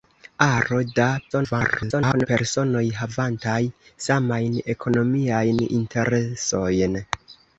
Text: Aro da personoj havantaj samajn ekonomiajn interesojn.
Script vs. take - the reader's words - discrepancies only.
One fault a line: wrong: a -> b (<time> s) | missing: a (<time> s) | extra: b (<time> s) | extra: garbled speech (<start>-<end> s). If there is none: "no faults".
extra: garbled speech (1.3-2.3 s)